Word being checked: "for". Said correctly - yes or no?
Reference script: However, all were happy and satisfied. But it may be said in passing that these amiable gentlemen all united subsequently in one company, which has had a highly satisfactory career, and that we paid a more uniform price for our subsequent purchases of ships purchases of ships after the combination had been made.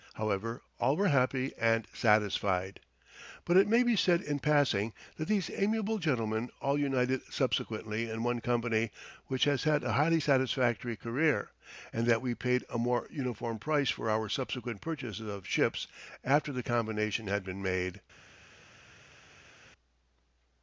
yes